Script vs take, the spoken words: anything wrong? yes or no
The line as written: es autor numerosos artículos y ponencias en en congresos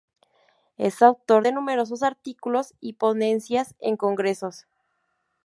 yes